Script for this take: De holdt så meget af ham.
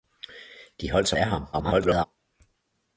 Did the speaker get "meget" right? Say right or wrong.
wrong